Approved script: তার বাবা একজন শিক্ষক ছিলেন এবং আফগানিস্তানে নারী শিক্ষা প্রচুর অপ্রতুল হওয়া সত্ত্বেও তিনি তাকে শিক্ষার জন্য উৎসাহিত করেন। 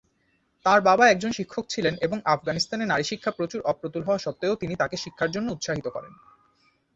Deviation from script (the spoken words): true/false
false